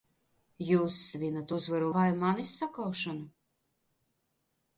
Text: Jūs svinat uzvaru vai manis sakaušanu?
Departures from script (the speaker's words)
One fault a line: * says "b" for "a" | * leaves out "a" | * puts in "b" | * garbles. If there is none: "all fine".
all fine